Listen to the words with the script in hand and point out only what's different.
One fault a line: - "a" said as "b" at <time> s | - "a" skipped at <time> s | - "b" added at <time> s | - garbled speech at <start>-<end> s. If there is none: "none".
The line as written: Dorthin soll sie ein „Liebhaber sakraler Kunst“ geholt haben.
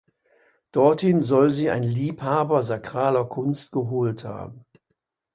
none